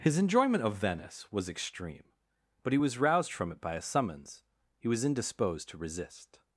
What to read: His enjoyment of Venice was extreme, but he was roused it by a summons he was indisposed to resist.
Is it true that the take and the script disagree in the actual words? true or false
true